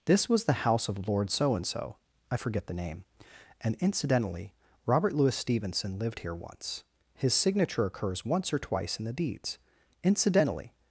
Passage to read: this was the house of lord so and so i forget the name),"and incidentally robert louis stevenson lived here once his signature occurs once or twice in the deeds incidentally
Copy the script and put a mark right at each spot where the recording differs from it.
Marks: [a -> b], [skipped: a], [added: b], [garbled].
this was the house of lord so and so i forget the name),"and incidentally robert louis stevenson lived here once his signature occurs once or twice in the deeds incidentally